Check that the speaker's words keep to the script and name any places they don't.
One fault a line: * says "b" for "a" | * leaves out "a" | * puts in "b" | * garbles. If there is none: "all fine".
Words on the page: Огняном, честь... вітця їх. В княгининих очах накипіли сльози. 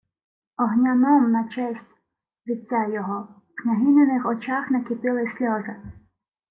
* puts in "на"
* says "його" for "їх"